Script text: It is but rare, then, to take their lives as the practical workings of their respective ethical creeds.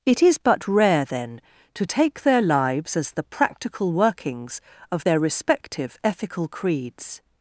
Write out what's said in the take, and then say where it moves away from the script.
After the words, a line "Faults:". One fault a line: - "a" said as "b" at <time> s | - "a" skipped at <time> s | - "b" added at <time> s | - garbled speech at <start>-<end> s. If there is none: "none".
It is but rare, then, to take their lives as the practical workings of their respective ethical creeds.
Faults:
none